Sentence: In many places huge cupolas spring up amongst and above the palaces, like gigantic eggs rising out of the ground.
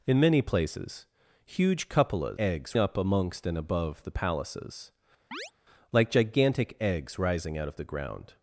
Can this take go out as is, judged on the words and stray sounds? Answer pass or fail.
fail